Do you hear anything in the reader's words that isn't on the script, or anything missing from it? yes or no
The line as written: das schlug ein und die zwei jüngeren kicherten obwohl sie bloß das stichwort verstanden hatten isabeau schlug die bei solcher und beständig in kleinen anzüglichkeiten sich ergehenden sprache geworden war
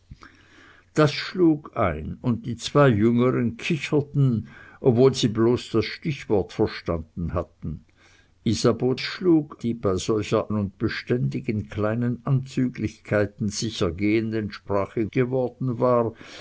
no